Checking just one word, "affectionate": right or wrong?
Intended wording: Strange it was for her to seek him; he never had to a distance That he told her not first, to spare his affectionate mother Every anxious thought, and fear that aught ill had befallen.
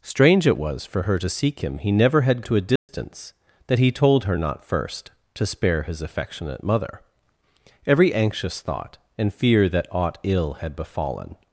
right